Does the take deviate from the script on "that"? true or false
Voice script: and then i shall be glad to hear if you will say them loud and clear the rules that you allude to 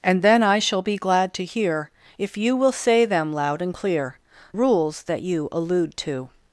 false